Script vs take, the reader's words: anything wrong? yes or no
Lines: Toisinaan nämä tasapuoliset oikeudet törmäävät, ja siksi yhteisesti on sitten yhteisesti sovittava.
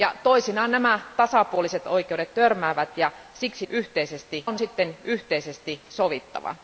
no